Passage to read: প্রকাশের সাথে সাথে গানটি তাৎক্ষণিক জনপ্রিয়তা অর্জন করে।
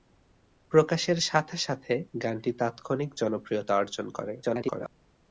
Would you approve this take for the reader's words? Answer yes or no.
no